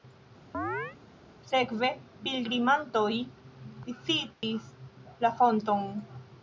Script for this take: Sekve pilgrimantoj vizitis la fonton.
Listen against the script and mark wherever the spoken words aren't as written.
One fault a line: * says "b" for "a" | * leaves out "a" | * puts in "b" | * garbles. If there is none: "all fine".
all fine